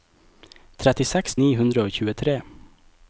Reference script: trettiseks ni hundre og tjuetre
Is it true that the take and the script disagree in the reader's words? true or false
false